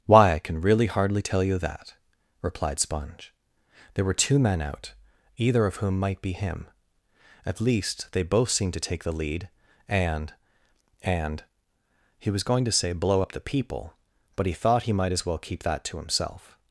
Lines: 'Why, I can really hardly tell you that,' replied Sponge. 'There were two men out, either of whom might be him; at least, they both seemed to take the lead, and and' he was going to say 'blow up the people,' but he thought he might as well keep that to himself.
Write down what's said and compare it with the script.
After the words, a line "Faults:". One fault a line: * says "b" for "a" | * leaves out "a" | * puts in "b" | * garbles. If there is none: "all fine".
'Why, I can really hardly tell you that,' replied Sponge. 'There were two men out, either of whom might be him; at least, they both seemed to take the lead, and and' he was going to say 'blow up the people,' but he thought he might as well keep that to himself.
Faults:
all fine